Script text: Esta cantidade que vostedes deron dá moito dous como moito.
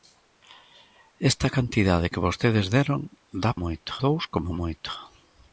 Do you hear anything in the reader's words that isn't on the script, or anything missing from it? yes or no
no